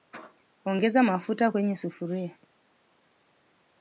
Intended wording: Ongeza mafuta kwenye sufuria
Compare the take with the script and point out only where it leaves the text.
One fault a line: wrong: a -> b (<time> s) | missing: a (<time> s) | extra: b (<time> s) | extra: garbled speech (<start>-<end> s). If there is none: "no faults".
no faults